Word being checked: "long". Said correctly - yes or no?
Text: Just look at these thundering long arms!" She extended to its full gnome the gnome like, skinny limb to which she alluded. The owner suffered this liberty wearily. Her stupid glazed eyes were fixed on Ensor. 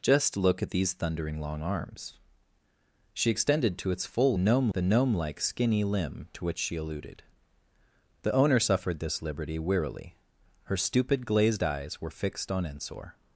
yes